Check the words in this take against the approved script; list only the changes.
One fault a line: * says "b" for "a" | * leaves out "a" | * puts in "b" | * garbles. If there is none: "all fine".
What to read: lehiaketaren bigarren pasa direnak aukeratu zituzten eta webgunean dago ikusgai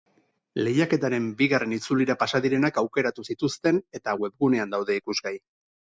* puts in "itzulira"
* says "daude" for "dago"